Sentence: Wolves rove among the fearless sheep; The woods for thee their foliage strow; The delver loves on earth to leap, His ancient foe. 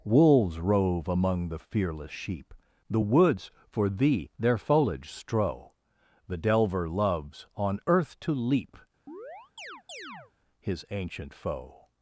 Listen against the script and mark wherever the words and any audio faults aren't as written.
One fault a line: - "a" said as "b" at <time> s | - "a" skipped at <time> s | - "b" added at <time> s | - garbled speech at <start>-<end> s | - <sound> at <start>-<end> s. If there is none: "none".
- chirp at 9.1-10.3 s